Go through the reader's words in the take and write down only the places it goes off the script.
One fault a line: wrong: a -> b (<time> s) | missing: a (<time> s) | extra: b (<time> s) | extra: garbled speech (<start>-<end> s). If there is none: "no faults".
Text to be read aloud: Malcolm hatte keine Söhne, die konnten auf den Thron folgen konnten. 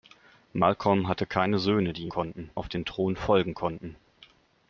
no faults